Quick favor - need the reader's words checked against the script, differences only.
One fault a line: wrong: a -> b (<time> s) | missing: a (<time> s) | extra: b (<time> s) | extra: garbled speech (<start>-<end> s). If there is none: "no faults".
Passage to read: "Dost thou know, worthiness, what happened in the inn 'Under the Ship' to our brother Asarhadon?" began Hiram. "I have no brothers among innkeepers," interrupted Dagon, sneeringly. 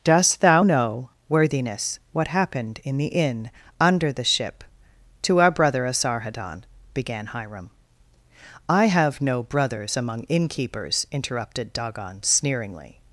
no faults